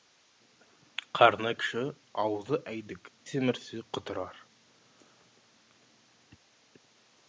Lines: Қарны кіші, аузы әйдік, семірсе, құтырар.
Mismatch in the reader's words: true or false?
false